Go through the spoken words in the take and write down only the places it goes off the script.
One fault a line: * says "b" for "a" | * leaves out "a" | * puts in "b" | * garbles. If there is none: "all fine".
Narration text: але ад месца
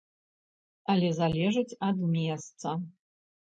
* puts in "залежыць"